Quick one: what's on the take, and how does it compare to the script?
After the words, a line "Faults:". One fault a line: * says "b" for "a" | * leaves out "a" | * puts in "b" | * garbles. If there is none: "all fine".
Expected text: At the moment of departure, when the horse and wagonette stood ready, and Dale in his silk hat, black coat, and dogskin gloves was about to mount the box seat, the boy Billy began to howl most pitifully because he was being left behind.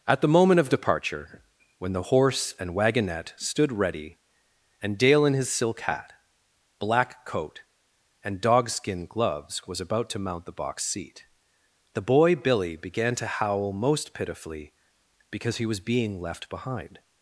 At the moment of departure, when the horse and wagonette stood ready, and Dale in his silk hat, black coat, and dogskin gloves was about to mount the box seat, the boy Billy began to howl most pitifully because he was being left behind.
Faults:
all fine